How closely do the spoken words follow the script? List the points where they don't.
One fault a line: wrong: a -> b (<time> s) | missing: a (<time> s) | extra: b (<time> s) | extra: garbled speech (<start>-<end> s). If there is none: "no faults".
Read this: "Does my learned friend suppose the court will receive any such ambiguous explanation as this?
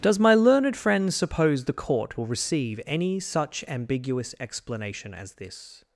no faults